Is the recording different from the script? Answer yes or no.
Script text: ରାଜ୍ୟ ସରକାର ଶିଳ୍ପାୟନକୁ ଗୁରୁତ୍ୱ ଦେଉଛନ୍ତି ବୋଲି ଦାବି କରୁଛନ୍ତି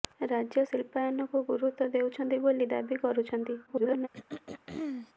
yes